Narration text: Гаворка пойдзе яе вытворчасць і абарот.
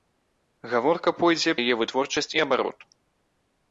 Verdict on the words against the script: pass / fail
pass